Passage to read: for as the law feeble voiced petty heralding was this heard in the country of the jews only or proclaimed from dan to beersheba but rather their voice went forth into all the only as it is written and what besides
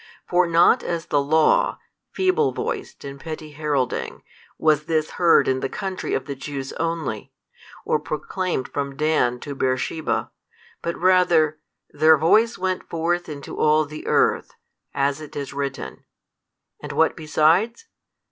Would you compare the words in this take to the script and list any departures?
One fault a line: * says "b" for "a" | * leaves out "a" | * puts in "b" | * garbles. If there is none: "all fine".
* puts in "not"
* puts in "and"
* says "earth" for "only"